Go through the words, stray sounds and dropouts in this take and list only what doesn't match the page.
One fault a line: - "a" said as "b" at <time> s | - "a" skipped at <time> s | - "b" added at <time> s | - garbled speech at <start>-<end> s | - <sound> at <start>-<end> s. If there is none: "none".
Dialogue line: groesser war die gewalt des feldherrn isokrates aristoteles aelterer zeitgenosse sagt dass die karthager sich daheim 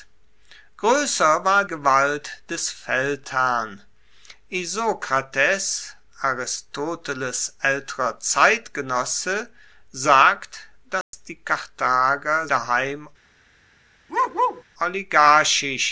- "die" skipped at 1.6 s
- dropout at 11.0-11.1 s
- "sich" skipped at 12.5 s
- bark at 14.1-14.6 s